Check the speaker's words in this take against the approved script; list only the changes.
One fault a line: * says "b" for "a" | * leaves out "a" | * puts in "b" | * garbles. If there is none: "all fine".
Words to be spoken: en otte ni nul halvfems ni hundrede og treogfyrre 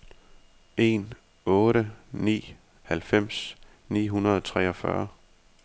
* leaves out "nul"